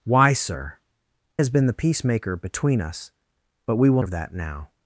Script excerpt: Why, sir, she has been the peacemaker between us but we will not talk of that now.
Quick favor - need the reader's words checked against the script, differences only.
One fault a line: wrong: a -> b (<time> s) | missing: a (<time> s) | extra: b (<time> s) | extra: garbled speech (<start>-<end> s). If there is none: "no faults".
missing: she (0.8 s)
missing: not talk (4.0 s)